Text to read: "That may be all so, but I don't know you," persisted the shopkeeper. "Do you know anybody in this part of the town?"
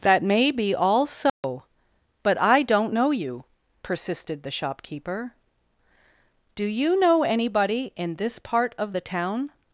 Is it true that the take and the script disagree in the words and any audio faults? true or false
true